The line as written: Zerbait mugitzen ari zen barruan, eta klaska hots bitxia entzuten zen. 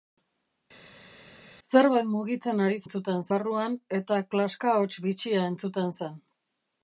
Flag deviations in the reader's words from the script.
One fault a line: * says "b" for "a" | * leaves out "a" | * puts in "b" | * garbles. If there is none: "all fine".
* says "entzuten" for "zen"